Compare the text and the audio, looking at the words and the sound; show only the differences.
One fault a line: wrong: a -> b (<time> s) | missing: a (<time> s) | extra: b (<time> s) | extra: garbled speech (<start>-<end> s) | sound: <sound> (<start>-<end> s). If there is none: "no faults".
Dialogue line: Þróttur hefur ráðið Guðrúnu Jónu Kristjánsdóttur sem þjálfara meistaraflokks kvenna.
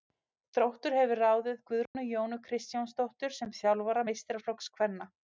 sound: dropout (1.9-1.9 s)